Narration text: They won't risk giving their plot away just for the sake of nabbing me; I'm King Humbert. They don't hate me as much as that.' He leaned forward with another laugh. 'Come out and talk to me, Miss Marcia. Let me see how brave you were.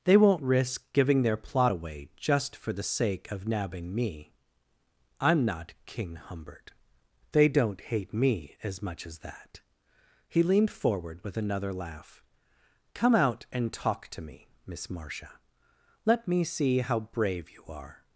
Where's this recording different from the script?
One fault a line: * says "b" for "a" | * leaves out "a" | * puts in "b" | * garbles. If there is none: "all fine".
* puts in "not"
* says "are" for "were"